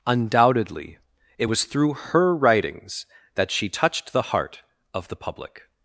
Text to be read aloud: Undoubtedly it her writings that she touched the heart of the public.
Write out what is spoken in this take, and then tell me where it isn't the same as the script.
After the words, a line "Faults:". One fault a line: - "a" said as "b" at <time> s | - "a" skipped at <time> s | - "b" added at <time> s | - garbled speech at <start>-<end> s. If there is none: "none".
Undoubtedly it was through her writings that she touched the heart of the public.
Faults:
- "was through" added at 1.4 s